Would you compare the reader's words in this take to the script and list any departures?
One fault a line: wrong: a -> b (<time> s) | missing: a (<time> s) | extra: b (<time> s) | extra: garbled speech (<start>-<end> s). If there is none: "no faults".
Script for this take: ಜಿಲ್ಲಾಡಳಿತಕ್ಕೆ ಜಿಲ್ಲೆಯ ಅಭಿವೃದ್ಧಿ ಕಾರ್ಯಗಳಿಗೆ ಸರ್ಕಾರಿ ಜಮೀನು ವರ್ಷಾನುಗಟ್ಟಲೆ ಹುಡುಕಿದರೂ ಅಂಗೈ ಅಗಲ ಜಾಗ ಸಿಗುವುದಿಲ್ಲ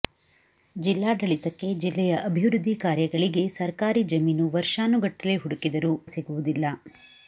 missing: ಅಂಗೈ ಅಗಲ ಜಾಗ (5.9 s)